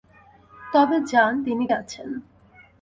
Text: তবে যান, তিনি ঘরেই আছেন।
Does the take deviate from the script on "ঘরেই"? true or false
true